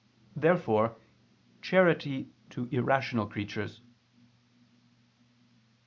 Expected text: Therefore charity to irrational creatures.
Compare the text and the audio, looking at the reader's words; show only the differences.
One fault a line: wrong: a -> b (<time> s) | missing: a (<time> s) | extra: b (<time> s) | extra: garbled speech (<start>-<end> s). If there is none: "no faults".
no faults